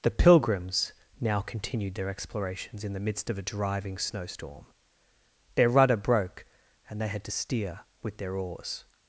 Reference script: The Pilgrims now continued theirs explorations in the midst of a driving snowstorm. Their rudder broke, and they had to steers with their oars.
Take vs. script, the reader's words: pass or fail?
fail